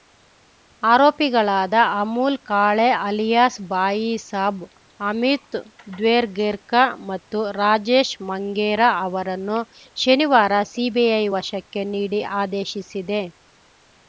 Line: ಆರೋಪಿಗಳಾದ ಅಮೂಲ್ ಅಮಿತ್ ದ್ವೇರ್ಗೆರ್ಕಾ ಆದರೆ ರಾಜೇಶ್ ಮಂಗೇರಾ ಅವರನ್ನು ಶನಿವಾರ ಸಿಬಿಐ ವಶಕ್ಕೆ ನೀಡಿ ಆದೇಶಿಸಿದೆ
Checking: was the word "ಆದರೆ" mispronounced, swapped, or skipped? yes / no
yes